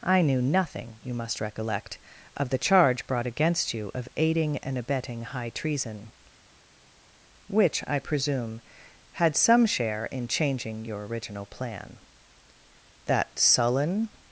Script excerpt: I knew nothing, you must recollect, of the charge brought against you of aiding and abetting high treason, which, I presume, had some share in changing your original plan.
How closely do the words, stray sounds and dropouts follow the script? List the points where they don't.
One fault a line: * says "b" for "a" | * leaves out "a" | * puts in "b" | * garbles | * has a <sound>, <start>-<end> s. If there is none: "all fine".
* puts in "That sullen"